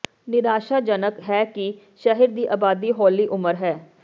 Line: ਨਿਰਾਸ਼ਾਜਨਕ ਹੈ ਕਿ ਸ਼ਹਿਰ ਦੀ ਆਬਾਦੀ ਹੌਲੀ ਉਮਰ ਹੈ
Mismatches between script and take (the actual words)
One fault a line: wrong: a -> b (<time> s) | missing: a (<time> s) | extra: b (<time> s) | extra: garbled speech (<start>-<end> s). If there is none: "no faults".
no faults